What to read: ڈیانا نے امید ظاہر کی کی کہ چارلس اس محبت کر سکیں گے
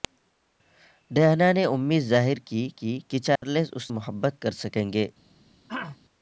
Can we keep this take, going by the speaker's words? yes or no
yes